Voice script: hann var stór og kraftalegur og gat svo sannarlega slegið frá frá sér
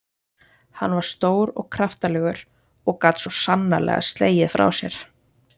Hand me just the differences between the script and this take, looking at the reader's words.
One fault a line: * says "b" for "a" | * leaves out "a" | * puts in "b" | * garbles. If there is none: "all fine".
* leaves out "frá"